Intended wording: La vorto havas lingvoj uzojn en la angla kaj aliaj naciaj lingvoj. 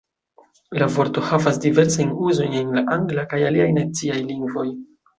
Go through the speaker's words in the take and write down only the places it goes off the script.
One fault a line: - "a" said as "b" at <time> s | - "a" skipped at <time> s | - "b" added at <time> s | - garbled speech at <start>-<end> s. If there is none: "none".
- "lingvoj" said as "diversajn" at 1.7 s